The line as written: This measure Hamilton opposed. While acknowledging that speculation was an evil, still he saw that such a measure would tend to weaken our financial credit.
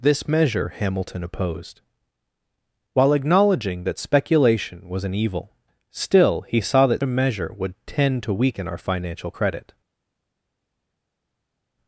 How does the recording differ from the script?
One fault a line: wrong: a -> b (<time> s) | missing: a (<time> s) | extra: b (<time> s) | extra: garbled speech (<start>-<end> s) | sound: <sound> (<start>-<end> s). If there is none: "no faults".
missing: such (7.0 s)